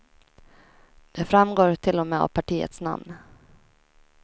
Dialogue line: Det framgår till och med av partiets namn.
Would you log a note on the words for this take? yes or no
no